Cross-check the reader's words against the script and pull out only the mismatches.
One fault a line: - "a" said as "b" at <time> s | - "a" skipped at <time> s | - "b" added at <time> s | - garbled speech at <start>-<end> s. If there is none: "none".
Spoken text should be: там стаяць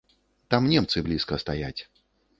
- "немцы блізка" added at 0.7 s